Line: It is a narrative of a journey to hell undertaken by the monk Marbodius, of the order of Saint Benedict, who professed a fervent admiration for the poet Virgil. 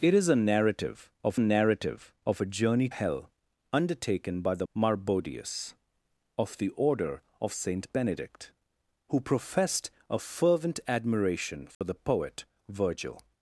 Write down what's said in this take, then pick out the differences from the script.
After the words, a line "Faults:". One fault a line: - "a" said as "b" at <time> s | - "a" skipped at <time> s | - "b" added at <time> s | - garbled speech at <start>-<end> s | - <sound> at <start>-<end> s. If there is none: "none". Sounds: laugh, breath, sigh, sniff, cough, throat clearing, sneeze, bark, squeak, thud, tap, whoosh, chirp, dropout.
It is a narrative of narrative of a journey hell undertaken by the Marbodius, of the order of Saint Benedict, who professed a fervent admiration for the poet Virgil.
Faults:
- "narrative of" added at 1.4 s
- "to" skipped at 2.9 s
- "monk" skipped at 4.7 s
- dropout at 11.7-11.8 s